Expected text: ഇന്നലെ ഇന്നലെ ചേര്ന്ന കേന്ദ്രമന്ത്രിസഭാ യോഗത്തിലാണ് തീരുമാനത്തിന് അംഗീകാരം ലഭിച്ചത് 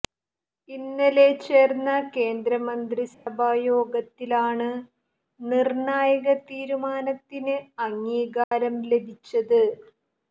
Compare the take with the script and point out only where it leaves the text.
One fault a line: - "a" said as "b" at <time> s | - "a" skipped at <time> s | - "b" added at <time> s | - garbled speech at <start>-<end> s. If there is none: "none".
- "ഇന്നലെ" skipped at 1.2 s
- "നിര്ണായക" added at 5.4 s